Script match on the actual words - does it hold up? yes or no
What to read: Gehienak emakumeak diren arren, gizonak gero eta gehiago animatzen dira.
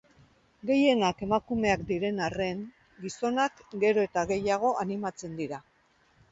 yes